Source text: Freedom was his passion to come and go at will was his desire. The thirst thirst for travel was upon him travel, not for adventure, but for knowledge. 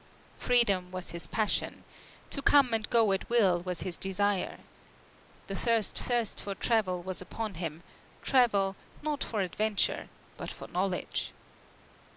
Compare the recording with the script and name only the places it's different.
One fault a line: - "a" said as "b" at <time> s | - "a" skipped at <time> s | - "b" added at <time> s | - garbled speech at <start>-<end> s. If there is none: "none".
none